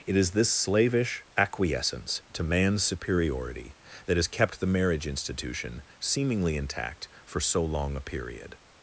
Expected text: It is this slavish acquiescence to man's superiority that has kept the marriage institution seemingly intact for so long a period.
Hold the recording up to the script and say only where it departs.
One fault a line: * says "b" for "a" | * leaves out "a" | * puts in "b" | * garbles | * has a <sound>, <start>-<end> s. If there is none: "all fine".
all fine